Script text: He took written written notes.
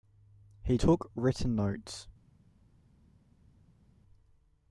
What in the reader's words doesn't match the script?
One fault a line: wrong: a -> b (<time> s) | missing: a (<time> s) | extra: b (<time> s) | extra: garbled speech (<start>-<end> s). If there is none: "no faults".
missing: written (1.5 s)